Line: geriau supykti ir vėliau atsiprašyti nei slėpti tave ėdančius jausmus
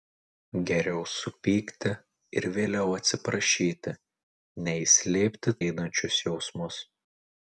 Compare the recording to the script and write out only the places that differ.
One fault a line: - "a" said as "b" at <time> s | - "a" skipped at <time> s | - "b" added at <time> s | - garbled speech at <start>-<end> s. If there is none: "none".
- "tave" skipped at 5.6 s